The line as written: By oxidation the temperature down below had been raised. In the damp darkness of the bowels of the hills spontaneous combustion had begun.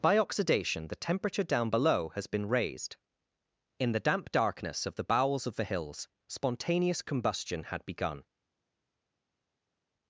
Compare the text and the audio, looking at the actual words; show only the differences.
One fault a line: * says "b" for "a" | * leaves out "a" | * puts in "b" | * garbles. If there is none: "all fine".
* says "has" for "had"